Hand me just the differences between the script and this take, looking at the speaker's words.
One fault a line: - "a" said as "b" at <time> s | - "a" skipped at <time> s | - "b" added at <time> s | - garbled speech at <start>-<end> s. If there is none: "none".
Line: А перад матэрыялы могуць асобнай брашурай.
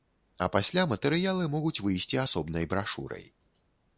- "перад" said as "пасля" at 0.5 s
- "выйсці" added at 1.9 s